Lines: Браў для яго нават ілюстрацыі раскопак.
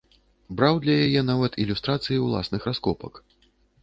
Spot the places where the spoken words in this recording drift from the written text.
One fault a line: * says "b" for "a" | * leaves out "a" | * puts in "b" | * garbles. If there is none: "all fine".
* says "яе" for "яго"
* puts in "ўласных"